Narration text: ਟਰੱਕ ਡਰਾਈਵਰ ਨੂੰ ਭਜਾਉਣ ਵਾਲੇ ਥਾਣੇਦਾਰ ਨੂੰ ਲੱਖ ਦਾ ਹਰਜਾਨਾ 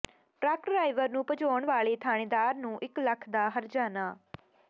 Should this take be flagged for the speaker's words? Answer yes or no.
yes